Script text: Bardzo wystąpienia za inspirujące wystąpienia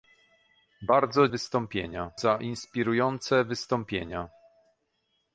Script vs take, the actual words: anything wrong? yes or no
no